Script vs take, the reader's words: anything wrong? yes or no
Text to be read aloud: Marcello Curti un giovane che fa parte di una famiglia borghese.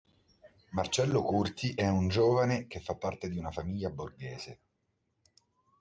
yes